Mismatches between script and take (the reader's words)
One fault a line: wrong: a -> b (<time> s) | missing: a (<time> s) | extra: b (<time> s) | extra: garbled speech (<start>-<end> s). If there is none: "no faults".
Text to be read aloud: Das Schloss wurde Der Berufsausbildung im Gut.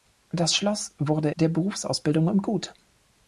no faults